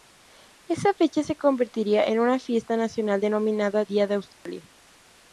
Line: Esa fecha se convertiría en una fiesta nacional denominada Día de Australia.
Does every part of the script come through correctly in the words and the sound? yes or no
no